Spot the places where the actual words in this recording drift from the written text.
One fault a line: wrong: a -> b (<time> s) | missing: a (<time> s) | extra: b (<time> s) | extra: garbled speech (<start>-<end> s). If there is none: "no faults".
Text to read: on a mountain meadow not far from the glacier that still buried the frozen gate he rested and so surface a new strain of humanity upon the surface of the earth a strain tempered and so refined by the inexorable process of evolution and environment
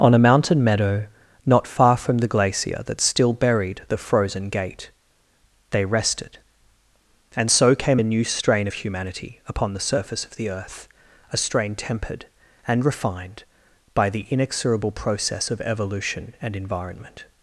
wrong: he -> they (5.7 s)
wrong: surface -> came (7.7 s)
missing: so (12.8 s)